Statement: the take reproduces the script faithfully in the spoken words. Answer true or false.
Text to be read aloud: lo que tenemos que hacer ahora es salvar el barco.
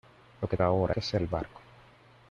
false